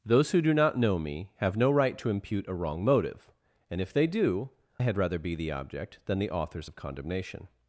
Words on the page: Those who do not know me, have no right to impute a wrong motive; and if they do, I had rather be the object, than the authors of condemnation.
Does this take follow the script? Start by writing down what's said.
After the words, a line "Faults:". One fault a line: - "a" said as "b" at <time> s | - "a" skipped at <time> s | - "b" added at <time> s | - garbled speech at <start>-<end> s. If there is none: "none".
Those who do not know me, have no right to impute a wrong motive; and if they do, had rather be the object, than the authors of condemnation.
Faults:
- "I" skipped at 4.5 s